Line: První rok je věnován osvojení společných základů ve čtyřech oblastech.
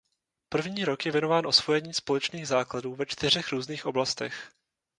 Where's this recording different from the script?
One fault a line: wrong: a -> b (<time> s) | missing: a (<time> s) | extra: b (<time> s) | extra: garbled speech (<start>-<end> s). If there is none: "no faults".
extra: různých (3.5 s)